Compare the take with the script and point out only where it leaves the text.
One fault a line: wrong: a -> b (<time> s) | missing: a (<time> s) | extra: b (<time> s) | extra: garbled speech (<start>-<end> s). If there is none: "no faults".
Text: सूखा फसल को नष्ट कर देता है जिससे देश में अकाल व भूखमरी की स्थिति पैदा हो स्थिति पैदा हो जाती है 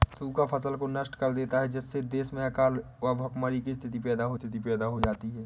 no faults